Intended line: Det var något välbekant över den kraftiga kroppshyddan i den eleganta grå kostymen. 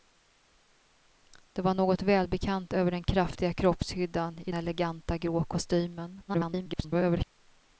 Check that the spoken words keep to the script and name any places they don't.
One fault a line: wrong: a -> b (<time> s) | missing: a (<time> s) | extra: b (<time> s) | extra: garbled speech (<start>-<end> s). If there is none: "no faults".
missing: den (4.5 s)
extra: garbled speech (6.3-7.2 s)